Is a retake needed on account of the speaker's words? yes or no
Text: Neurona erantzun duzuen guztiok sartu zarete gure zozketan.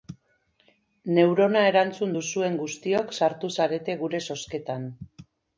no